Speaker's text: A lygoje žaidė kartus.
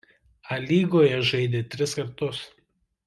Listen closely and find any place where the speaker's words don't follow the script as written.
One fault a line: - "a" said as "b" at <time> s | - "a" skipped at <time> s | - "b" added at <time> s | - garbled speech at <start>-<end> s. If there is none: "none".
- "tris" added at 1.8 s